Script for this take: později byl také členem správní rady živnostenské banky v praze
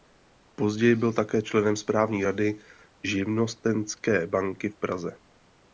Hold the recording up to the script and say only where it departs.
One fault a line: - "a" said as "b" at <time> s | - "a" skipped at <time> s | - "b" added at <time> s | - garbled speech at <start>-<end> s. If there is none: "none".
none